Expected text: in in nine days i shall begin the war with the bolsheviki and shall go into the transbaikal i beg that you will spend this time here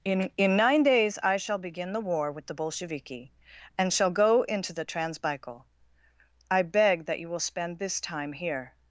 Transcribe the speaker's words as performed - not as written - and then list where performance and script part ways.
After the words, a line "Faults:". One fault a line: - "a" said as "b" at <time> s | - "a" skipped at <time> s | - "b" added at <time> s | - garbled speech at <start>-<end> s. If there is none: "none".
in in nine days i shall begin the war with the bolsheviki and shall go into the transbaikal i beg that you will spend this time here
Faults:
none